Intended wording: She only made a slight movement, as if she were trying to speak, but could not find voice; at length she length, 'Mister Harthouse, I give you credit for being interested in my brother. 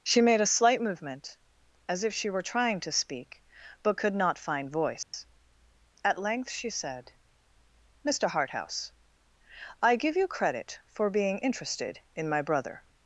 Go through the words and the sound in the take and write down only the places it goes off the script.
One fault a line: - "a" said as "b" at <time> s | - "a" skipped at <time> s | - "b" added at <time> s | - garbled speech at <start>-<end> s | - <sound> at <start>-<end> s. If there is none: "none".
- "only" skipped at 0.2 s
- dropout at 5.0-5.1 s
- "length" said as "said" at 6.7 s